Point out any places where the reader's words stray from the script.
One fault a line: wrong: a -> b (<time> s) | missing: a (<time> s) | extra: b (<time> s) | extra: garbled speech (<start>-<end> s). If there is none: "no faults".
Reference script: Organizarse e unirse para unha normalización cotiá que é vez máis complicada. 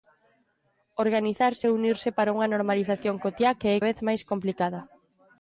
no faults